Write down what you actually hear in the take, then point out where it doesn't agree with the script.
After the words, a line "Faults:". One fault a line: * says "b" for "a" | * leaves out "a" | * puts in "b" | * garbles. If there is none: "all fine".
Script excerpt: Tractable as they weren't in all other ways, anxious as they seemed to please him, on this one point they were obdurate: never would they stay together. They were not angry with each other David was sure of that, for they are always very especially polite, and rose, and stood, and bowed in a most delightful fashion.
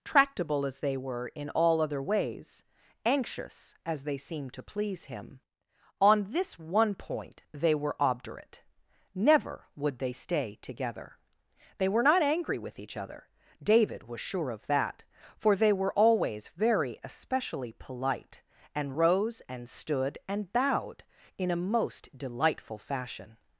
Tractable as they were in all other ways, anxious as they seemed to please him, on this one point they were obdurate: never would they stay together. They were not angry with each other David was sure of that, for they were always very especially polite, and rose, and stood, and bowed in a most delightful fashion.
Faults:
* says "were" for "weren't"
* says "were" for "are"